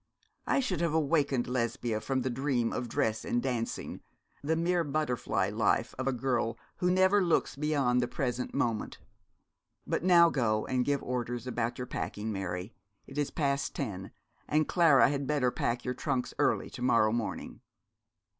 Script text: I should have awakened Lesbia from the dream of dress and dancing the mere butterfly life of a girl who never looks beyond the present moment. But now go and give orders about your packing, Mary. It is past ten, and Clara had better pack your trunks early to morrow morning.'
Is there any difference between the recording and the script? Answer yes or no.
no